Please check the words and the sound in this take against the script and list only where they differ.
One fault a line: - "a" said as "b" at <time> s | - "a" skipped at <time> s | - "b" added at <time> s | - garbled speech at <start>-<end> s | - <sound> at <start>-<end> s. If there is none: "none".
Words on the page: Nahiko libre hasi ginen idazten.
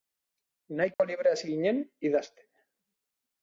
- dropout at 0.9-1.0 s